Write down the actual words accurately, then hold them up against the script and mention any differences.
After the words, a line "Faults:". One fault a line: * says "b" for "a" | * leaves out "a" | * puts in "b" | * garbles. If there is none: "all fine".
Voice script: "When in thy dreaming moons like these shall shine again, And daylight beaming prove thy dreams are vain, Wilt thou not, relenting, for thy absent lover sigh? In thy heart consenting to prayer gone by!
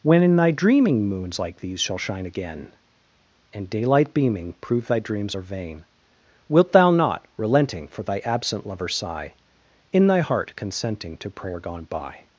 "When in thy dreaming moons like these shall shine again, And daylight beaming prove thy dreams are vain, Wilt thou not, relenting, for thy absent lover sigh? In thy heart consenting to prayer gone by!
Faults:
all fine